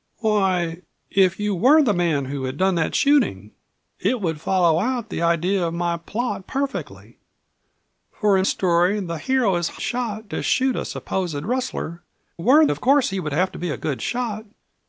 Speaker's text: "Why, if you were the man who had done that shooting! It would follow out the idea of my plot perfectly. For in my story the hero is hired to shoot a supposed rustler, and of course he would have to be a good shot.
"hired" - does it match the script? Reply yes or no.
no